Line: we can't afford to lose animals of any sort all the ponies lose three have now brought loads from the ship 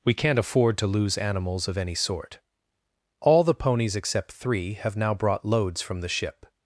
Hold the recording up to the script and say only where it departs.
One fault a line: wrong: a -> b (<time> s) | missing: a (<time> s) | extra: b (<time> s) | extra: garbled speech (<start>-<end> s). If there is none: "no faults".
wrong: lose -> except (4.0 s)